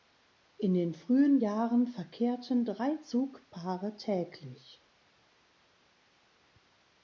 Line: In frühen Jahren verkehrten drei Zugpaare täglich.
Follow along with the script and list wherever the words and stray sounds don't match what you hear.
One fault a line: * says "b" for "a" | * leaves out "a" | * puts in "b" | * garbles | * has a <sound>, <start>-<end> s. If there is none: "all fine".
* puts in "den"